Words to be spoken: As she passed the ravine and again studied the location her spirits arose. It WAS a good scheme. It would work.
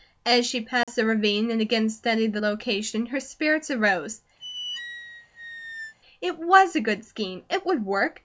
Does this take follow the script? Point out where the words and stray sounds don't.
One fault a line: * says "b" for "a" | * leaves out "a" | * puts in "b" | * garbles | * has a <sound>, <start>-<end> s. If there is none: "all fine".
* has a dropout, 0.8-0.9 s
* has a squeak, 4.4-5.9 s